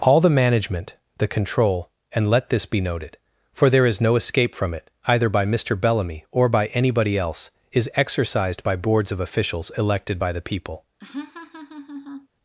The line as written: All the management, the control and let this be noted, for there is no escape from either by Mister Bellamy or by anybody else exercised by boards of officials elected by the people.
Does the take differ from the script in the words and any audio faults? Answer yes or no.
yes